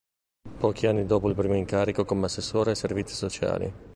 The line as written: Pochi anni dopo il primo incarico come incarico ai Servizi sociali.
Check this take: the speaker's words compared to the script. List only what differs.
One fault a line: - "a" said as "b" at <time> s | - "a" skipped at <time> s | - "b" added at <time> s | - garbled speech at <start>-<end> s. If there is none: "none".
- "incarico" said as "assessore" at 2.2 s